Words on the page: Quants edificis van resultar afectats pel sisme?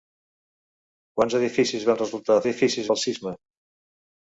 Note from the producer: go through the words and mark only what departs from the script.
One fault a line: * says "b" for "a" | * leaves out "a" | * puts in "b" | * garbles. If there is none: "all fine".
* says "edificis" for "afectats"